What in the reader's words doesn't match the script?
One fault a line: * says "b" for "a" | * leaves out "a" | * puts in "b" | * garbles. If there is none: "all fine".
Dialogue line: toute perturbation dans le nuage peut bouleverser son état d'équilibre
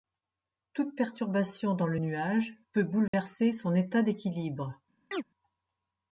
all fine